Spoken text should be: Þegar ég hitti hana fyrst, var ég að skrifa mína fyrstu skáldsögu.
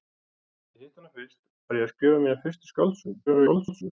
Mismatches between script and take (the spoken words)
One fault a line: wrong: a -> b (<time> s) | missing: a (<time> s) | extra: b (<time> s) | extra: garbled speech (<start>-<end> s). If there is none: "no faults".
extra: garbled speech (3.3-3.9 s)